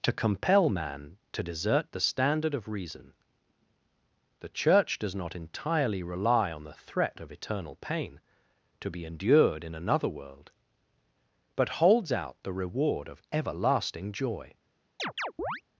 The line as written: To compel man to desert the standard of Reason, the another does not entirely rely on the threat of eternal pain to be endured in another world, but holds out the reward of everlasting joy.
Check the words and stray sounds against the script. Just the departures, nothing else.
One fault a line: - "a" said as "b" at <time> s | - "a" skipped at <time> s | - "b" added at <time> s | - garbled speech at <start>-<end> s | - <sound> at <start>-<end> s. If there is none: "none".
- "another" said as "church" at 4.5 s
- chirp at 15.0-15.6 s